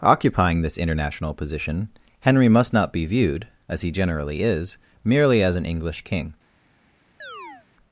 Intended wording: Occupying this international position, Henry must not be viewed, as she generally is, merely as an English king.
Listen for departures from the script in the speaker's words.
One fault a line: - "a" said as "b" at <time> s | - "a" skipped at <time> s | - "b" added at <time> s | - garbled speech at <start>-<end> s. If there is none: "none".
- "she" said as "he" at 3.8 s